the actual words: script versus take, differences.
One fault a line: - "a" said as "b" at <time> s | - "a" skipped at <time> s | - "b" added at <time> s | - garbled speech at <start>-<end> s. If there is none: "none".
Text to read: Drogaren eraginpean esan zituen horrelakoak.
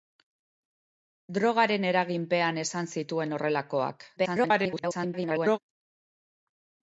- garbled speech at 4.2-5.6 s